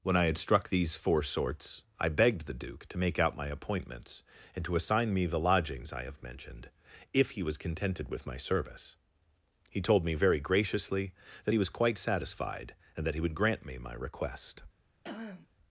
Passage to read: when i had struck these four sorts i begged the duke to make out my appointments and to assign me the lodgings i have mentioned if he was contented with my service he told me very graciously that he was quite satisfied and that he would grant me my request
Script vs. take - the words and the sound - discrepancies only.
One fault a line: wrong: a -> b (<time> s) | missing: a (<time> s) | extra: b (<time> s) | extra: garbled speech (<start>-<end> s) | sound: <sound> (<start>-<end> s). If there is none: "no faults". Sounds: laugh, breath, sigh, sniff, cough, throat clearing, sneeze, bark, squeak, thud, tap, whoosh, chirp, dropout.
sound: throat clearing (15.0-15.5 s)